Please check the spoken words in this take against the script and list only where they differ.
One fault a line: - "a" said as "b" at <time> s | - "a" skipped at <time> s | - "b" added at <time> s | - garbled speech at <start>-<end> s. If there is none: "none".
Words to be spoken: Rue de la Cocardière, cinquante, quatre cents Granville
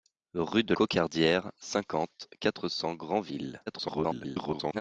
- "la" skipped at 0.7 s
- garbled speech at 3.7-4.8 s